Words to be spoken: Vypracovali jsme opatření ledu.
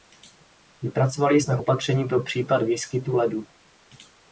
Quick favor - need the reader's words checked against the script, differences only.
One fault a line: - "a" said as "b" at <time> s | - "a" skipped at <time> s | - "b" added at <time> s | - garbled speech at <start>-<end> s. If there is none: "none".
- "pro případ výskytu" added at 2.1 s